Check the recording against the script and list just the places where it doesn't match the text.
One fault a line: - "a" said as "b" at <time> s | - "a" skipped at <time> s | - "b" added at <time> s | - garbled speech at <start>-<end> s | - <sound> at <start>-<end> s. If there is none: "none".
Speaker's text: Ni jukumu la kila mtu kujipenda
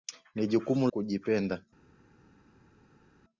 - "la kila mtu" skipped at 0.9 s